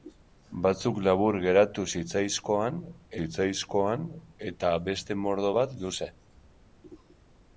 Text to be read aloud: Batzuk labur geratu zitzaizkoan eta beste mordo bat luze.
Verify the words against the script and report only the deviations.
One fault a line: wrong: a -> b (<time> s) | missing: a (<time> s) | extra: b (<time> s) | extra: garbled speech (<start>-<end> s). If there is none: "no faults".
extra: zitzaizkoan (3.2 s)